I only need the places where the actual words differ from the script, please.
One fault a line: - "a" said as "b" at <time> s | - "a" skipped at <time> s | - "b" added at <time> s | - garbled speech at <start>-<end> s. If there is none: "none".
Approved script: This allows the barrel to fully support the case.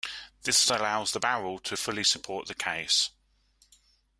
none